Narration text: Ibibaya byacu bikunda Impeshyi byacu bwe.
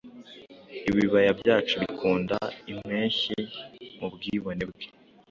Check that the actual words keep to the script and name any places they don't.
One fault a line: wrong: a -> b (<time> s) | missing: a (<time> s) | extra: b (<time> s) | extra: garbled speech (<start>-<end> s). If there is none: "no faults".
wrong: byacu -> mubwibone (4.0 s)